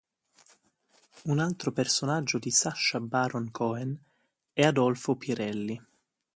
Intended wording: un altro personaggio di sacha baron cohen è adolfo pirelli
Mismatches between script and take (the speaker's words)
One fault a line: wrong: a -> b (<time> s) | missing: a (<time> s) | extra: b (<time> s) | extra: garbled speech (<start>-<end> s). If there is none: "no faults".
no faults